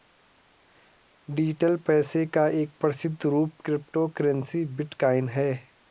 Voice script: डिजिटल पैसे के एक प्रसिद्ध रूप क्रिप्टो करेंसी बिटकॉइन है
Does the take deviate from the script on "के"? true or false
true